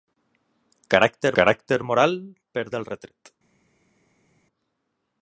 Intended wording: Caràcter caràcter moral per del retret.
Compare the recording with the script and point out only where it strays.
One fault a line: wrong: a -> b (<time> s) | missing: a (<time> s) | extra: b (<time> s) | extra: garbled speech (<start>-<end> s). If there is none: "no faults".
no faults